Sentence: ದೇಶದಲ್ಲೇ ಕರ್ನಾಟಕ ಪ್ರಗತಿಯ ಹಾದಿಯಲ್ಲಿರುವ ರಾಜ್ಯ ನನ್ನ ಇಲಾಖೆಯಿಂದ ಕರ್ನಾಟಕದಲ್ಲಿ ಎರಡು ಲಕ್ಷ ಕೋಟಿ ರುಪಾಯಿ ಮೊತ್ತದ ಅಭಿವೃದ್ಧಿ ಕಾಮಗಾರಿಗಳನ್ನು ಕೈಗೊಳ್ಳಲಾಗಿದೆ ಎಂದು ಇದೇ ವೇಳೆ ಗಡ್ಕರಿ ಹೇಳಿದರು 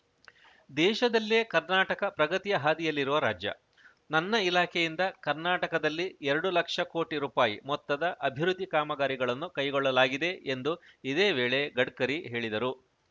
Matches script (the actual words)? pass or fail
pass